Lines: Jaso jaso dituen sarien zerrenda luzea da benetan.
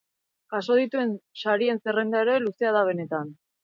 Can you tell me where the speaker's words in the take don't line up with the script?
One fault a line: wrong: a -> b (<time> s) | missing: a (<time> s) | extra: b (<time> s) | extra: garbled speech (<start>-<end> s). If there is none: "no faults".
missing: jaso (0.8 s)
extra: ere (2.3 s)